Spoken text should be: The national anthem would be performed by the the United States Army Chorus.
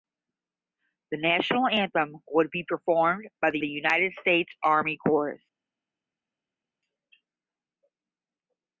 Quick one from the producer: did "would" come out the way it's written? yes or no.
yes